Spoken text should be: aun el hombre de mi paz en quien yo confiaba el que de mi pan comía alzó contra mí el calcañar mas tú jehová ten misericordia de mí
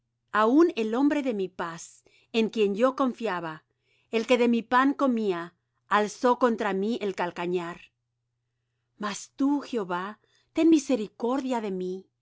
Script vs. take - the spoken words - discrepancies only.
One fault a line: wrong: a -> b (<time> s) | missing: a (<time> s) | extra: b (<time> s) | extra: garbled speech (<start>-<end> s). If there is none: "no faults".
no faults